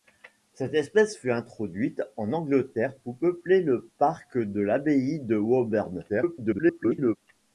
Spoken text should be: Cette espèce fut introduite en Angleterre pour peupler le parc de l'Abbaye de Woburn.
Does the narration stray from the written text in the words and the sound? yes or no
yes